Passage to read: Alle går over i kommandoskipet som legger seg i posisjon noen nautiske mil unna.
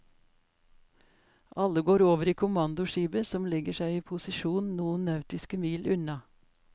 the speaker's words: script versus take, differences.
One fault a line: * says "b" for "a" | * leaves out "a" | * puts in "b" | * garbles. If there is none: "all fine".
all fine